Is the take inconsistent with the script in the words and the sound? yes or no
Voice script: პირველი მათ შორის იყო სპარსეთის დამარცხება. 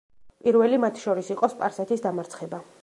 no